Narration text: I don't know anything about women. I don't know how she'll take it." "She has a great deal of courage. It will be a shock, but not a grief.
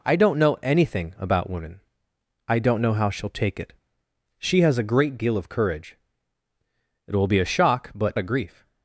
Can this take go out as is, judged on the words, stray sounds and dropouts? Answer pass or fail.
fail